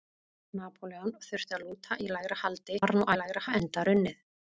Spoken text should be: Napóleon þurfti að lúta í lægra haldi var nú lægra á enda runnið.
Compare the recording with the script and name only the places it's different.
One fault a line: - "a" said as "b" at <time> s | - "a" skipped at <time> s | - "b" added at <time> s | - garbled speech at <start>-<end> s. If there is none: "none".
none